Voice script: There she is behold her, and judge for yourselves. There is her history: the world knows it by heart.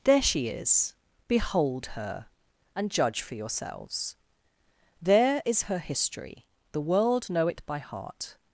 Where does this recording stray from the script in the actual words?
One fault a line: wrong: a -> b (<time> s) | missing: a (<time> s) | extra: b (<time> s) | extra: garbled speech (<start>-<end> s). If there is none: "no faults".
wrong: knows -> know (7.3 s)